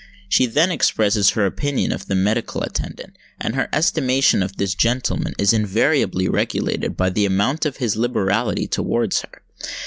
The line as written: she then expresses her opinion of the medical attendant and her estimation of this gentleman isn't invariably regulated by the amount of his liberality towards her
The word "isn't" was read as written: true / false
false